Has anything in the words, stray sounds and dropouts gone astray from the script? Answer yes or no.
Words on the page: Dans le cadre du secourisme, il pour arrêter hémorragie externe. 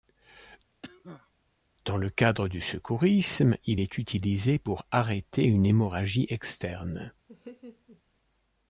yes